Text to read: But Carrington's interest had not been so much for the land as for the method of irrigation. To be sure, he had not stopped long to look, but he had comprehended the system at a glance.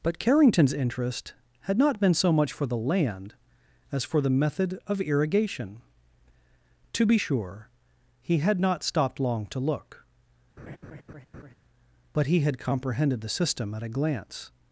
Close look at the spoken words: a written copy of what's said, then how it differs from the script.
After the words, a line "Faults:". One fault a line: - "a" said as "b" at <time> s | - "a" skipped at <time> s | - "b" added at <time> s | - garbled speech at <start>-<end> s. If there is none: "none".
But Carrington's interest had not been so much for the land as for the method of irrigation. To be sure, he had not stopped long to look, but he had comprehended the system at a glance.
Faults:
none